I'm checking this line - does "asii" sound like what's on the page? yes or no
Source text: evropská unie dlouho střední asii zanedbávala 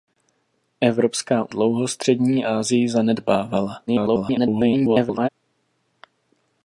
yes